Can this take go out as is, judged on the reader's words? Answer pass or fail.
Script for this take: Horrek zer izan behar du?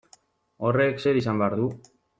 pass